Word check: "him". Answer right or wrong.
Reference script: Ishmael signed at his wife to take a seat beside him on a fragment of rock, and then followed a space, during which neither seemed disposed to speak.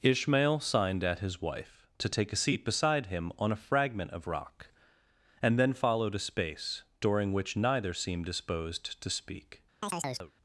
right